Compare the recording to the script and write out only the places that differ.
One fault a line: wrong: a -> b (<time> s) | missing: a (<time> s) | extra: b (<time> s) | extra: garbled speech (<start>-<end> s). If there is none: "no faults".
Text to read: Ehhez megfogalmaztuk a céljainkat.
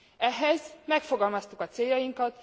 no faults